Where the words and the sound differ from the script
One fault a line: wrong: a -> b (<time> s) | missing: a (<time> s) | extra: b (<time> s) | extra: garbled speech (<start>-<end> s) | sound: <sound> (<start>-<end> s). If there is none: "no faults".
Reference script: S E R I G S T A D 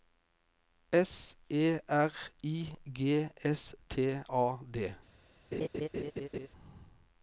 sound: laugh (5.5-6.5 s)